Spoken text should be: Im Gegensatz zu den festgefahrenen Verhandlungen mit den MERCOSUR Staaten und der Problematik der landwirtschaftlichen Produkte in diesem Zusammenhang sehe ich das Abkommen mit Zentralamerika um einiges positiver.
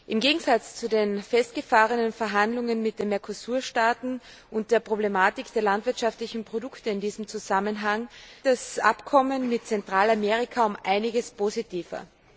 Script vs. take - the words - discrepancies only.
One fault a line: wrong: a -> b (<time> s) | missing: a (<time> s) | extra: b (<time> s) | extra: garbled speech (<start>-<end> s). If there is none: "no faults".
missing: sehe ich (8.1 s)